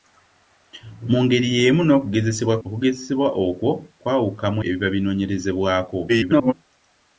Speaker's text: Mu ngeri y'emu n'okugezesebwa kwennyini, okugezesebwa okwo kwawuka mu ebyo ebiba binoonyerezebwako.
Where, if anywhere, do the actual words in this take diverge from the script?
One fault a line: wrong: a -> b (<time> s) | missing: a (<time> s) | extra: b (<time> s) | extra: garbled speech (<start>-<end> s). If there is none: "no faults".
missing: kwennyini (2.5 s)
missing: ebyo (4.6 s)
extra: garbled speech (6.1-6.5 s)